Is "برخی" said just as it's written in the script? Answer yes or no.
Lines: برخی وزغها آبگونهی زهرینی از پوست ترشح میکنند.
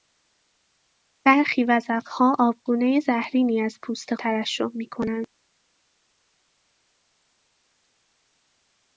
yes